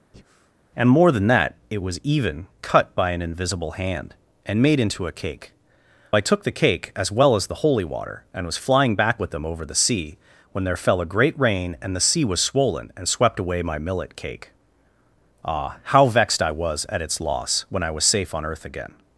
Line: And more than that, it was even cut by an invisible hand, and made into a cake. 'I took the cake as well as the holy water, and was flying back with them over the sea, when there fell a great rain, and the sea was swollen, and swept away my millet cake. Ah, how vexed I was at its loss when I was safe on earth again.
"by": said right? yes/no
yes